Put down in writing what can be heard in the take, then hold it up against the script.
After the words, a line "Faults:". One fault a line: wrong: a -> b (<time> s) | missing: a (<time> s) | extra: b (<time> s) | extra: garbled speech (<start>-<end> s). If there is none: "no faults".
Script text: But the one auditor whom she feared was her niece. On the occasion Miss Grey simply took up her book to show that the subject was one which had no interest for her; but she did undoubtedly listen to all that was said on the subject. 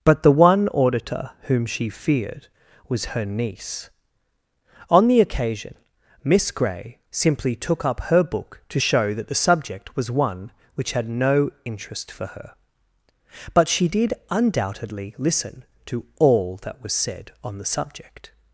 But the one auditor whom she feared was her niece. On the occasion Miss Grey simply took up her book to show that the subject was one which had no interest for her; but she did undoubtedly listen to all that was said on the subject.
Faults:
no faults